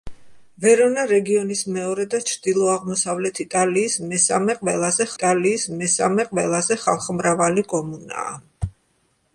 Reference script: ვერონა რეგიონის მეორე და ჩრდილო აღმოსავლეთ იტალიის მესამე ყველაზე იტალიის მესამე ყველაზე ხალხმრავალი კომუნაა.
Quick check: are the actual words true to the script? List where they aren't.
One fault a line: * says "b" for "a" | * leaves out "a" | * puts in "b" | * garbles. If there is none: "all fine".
all fine